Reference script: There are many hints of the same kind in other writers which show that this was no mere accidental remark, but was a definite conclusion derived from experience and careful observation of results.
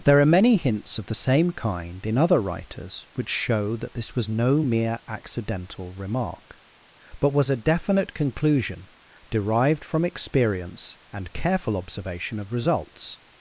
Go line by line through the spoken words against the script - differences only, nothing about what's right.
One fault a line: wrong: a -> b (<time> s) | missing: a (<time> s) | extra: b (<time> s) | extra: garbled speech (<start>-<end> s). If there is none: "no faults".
no faults